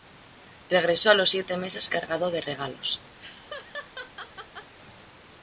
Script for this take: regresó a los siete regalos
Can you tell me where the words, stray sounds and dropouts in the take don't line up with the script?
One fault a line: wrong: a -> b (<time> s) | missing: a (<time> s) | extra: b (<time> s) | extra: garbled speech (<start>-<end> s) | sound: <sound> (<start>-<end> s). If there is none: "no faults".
extra: meses cargado de (1.6 s)
sound: laugh (3.2-4.7 s)